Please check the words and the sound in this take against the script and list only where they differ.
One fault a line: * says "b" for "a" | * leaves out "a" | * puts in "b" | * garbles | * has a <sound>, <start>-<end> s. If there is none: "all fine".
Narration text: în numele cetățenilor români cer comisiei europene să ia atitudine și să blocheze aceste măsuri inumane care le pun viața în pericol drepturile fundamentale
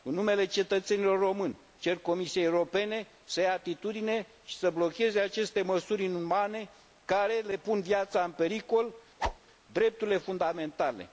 * has a whoosh, 9.2-9.4 s